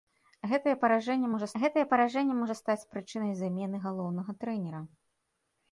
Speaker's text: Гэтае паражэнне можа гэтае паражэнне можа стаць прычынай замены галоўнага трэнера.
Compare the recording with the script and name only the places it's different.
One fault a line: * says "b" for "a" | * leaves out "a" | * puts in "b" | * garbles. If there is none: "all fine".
all fine